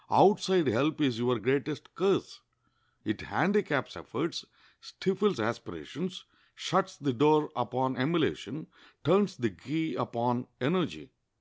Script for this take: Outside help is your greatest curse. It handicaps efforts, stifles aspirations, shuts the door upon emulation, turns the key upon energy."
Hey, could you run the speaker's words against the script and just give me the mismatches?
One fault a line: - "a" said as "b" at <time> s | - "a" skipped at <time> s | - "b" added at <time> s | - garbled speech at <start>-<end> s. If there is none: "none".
none